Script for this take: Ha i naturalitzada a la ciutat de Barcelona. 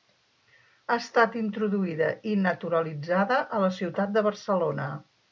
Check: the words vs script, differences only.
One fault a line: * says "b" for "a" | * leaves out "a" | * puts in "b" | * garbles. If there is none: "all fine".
* puts in "estat introduïda"